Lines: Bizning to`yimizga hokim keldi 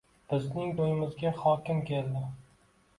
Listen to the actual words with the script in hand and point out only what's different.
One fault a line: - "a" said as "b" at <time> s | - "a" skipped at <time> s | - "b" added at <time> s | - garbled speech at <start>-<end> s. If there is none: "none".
none